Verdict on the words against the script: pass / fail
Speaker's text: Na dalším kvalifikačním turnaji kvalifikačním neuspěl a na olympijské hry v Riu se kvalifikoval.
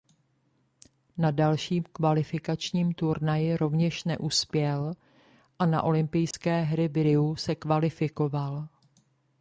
fail